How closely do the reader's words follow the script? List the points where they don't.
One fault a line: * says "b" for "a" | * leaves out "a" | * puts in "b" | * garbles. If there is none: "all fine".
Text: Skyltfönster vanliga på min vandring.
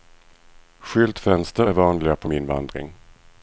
* puts in "är"